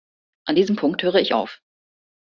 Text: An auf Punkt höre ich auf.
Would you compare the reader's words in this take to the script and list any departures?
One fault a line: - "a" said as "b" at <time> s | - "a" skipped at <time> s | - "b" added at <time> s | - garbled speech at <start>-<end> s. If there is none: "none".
- "auf" said as "diesem" at 0.5 s